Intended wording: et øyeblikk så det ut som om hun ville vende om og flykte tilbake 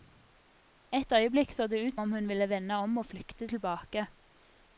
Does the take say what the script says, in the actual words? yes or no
no